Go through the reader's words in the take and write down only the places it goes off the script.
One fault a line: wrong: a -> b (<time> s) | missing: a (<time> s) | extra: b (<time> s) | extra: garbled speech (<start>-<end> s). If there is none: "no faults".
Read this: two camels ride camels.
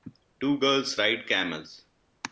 wrong: camels -> girls (0.6 s)